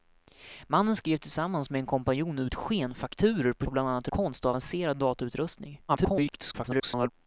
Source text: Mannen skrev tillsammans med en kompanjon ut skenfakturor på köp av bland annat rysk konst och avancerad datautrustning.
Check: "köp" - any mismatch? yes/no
yes